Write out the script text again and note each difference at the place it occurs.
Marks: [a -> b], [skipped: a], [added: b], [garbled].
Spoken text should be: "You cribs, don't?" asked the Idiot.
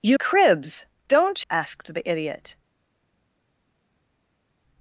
"You cribs, don't?" asked the Idiot.